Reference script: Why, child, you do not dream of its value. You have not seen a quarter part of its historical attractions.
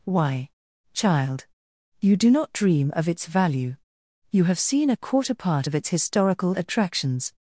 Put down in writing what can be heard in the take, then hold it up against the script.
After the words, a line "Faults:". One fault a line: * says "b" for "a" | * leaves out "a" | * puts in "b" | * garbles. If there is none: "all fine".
Why, child, you do not dream of its value. You have seen a quarter part of its historical attractions.
Faults:
* leaves out "not"